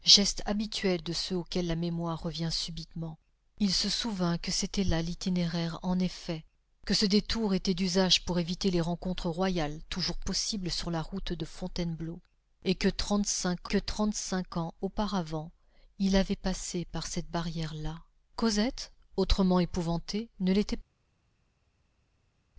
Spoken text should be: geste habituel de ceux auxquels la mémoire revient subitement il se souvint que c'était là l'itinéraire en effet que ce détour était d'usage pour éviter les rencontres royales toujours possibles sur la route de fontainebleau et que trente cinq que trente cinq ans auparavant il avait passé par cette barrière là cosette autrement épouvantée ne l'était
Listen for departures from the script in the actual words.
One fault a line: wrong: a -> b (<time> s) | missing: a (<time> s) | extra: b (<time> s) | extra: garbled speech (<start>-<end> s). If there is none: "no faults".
no faults